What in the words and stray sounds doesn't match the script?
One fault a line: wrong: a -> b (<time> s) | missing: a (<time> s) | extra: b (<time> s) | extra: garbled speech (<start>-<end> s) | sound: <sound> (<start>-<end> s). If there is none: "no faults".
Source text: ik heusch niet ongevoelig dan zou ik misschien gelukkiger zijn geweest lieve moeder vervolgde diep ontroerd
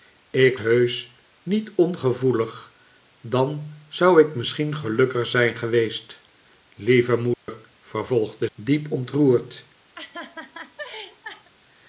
sound: dropout (7.3-7.5 s)
sound: laugh (9.9-11.5 s)